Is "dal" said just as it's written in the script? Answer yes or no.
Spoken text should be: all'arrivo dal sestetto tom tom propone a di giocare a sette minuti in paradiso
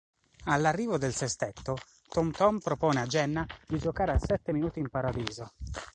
no